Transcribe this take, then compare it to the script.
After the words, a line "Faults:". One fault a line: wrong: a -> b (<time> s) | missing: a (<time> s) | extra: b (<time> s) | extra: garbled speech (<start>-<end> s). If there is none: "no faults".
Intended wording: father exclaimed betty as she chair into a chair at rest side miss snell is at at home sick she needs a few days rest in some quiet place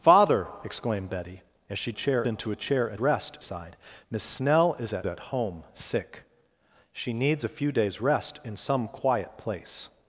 father exclaimed betty as she chair into a chair at rest side miss snell is at at home sick she needs a few days rest in some quiet place
Faults:
no faults